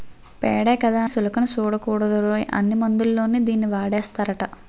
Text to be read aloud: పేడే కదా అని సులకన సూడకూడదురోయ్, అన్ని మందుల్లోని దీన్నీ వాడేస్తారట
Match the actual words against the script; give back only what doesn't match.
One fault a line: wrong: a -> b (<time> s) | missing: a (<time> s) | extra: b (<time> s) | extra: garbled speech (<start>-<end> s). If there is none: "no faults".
missing: అని (1.0 s)